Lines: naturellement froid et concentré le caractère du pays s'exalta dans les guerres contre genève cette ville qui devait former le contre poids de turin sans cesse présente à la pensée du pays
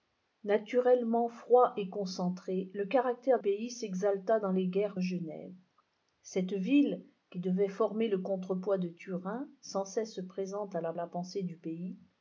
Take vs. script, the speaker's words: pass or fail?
fail